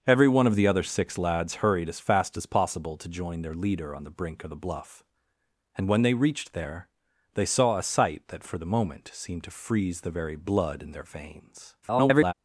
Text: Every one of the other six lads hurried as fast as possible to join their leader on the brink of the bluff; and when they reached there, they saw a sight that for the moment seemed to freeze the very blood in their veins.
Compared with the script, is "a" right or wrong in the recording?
right